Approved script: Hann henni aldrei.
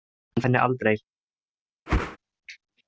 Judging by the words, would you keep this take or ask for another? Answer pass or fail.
pass